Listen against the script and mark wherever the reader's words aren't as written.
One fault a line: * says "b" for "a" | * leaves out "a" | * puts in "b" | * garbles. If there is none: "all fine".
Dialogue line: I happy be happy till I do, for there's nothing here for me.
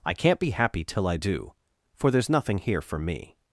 * says "can't" for "happy"